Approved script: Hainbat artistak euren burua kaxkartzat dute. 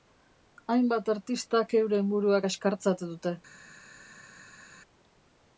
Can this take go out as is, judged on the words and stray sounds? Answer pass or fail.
pass